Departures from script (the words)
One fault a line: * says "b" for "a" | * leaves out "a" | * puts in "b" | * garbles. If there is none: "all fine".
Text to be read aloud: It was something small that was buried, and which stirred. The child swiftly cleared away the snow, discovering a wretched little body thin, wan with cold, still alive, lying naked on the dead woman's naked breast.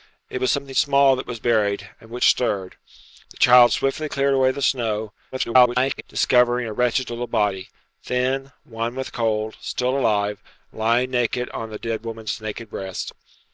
* garbles